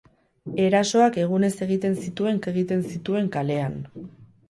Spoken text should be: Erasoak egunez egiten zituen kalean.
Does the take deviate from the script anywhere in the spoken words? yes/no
yes